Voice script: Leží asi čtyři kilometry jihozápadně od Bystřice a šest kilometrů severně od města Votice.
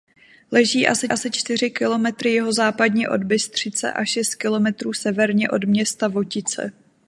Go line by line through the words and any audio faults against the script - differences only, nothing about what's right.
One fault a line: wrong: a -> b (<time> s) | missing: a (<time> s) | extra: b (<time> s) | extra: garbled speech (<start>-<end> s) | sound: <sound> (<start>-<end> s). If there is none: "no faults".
extra: asi (1.1 s)